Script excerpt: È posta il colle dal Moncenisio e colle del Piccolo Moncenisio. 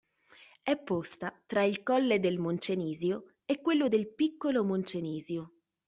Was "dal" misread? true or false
true